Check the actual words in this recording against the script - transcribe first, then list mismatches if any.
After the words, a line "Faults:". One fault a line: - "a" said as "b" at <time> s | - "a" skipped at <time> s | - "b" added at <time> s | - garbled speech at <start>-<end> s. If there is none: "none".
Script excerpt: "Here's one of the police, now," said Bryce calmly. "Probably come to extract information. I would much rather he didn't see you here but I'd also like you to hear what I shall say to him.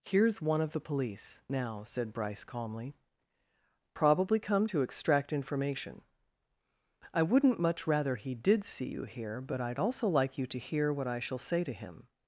"Here's one of the police, now," said Bryce calmly. "Probably come to extract information. I wouldn't much rather he did see you here but I'd also like you to hear what I shall say to him.
Faults:
- "would" said as "wouldn't" at 7.2 s
- "didn't" said as "did" at 8.3 s